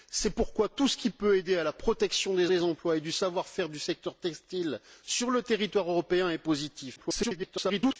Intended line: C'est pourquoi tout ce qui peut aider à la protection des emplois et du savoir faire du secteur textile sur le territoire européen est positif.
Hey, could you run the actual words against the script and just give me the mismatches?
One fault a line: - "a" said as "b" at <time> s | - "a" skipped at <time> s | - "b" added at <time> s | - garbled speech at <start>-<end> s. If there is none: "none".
- "des" added at 2.5 s
- garbled speech at 7.0-8.0 s